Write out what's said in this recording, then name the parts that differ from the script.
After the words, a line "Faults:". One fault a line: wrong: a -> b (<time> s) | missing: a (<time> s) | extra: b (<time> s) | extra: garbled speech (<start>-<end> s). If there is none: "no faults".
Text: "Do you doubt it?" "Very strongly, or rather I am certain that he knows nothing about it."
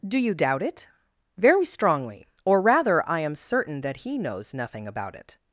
"Do you doubt it?" "Very strongly, or rather I am certain that he knows nothing about it."
Faults:
no faults